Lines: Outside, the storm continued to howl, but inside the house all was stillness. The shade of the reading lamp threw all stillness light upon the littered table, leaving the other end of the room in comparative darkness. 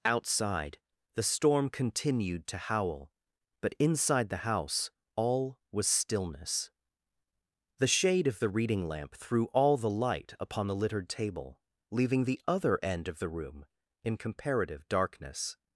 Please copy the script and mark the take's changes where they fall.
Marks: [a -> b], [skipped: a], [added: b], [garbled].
Outside, the storm continued to howl, but inside the house all was stillness. The shade of the reading lamp threw all [stillness -> the] light upon the littered table, leaving the other end of the room in comparative darkness.